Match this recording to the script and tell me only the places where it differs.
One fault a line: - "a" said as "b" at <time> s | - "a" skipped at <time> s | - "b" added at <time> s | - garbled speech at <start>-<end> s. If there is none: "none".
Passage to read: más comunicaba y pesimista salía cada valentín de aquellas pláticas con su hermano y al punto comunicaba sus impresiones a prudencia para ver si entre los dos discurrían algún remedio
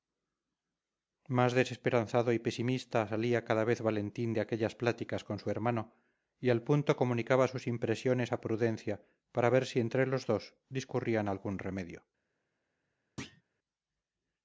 - "comunicaba" said as "desesperanzado" at 1.5 s
- "vez" added at 3.6 s